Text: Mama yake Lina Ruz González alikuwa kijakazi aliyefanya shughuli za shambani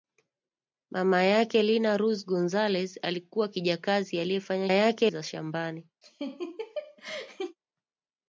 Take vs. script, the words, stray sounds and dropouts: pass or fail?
fail